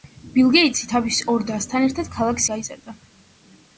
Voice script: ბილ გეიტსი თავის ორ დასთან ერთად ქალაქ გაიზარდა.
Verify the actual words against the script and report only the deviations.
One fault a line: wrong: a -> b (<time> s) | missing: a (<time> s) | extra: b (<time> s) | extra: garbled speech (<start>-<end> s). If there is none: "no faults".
no faults